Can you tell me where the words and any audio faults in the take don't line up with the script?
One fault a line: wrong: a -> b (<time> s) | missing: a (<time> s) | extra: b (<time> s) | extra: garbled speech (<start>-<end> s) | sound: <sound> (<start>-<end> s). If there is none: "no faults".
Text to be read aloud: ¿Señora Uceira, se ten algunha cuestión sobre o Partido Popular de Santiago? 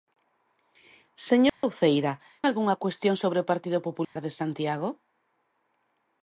sound: dropout (1.5-1.6 s)
missing: se ten (2.1 s)
sound: dropout (4.0-4.2 s)